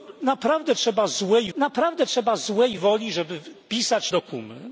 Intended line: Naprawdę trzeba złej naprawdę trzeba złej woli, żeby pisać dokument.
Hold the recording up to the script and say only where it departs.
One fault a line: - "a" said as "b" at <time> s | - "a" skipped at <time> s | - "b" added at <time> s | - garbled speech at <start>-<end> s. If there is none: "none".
none